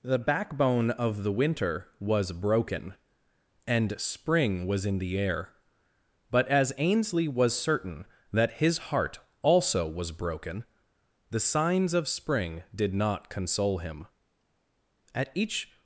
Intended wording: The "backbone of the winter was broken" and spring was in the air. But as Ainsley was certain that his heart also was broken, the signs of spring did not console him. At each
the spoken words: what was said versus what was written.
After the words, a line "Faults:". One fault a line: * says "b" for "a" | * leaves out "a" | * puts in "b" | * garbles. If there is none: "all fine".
The "backbone of the winter was broken" and spring was in the air. But as Ainsley was certain that his heart also was broken, the signs of spring did not console him. At each
Faults:
all fine